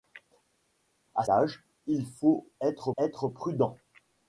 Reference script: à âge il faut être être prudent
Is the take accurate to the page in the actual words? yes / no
yes